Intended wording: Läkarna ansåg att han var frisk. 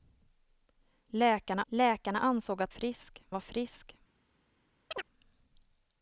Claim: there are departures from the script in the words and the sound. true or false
true